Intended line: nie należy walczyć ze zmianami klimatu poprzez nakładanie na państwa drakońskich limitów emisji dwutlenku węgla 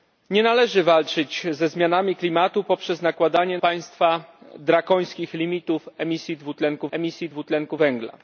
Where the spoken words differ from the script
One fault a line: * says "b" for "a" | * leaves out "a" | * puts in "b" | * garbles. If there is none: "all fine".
* leaves out "na"
* puts in "emisji dwutlenku"